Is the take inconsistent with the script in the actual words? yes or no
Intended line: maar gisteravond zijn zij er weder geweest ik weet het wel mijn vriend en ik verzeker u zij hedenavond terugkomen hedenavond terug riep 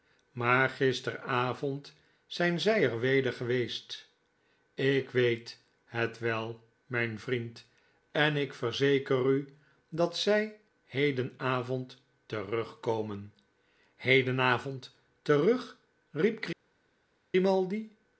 yes